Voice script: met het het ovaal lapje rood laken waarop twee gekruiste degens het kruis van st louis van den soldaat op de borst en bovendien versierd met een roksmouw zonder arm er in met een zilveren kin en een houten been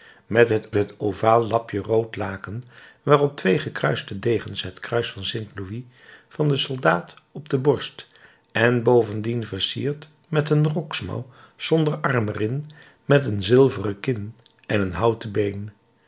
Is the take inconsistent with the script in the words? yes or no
no